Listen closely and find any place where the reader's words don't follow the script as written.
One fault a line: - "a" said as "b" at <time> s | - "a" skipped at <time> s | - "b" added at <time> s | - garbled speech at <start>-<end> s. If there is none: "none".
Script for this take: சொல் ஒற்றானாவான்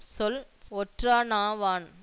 none